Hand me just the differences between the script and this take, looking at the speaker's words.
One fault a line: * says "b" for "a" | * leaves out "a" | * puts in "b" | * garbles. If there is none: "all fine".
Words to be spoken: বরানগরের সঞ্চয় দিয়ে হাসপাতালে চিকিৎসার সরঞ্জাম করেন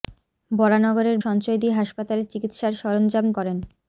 all fine